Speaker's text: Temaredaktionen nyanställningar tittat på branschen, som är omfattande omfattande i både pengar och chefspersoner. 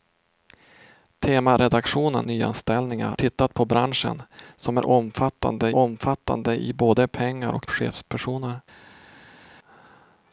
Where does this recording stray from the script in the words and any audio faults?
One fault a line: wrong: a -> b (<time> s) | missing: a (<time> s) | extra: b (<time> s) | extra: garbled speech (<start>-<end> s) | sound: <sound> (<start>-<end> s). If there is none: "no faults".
no faults